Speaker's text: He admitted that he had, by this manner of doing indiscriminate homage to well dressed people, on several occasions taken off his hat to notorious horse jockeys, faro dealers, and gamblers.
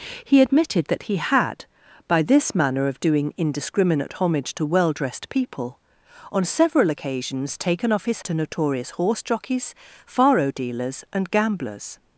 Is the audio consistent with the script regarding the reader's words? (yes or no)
no